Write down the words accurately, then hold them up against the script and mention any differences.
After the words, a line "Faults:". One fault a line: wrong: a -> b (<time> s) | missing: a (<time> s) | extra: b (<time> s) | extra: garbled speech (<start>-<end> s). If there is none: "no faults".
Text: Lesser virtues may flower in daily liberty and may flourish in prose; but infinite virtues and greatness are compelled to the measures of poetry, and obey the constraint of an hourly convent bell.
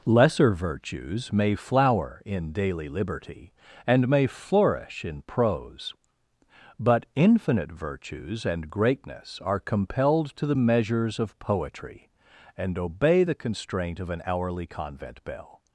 Lesser virtues may flower in daily liberty and may flourish in prose; but infinite virtues and greatness are compelled to the measures of poetry, and obey the constraint of an hourly convent bell.
Faults:
no faults